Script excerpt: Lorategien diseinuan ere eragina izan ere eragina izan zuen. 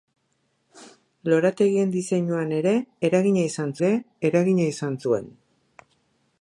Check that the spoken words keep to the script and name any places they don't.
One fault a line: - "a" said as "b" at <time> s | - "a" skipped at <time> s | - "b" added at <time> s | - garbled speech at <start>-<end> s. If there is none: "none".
none